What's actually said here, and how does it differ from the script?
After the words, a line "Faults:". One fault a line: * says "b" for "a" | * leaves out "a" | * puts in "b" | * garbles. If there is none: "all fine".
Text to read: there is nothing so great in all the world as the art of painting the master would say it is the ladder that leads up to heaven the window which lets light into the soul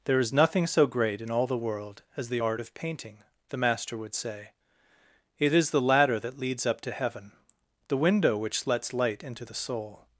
there is nothing so great in all the world as the art of painting the master would say it is the ladder that leads up to heaven the window which lets light into the soul
Faults:
all fine